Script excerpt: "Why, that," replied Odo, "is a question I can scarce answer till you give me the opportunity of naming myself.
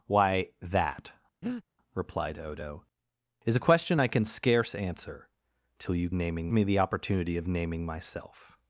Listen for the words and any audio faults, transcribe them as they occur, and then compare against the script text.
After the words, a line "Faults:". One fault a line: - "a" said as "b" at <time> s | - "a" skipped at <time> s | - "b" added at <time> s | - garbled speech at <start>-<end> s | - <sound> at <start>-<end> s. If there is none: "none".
"Why, that," replied Odo, "is a question I can scarce answer till you naming me the opportunity of naming myself.
Faults:
- breath at 1.4-1.6 s
- "give" said as "naming" at 6.1 s